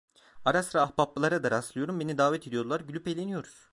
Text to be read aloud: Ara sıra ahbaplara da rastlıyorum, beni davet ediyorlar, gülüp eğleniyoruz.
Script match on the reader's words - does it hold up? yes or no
yes